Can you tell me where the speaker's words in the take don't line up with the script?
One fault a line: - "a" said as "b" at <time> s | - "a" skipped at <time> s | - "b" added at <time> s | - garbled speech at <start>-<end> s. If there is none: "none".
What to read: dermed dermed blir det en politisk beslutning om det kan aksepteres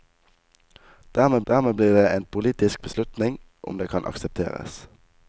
none